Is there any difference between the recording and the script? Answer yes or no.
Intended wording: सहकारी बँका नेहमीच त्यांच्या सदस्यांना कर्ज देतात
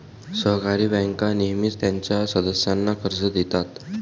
no